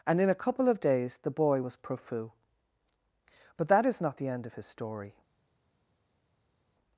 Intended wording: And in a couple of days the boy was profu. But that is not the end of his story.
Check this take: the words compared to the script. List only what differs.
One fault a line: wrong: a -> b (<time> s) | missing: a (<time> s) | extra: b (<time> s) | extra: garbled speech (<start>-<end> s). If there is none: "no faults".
no faults